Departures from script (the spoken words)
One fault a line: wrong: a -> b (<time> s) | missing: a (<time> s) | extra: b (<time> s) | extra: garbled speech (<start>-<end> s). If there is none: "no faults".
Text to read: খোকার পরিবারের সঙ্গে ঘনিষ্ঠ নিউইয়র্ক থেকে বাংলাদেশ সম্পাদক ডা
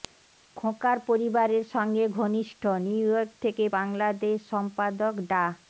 no faults